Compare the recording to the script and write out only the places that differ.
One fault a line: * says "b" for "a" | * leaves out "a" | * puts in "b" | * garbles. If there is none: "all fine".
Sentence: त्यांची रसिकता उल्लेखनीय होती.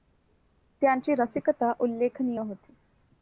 all fine